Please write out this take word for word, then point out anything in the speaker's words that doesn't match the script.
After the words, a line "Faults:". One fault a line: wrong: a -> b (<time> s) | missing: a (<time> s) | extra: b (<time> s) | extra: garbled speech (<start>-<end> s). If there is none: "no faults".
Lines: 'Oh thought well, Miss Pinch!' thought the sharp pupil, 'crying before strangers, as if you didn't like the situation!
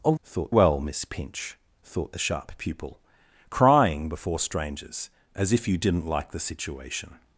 'Oh thought well, Miss Pinch!' thought the sharp pupil, 'crying before strangers, as if you didn't like the situation!
Faults:
no faults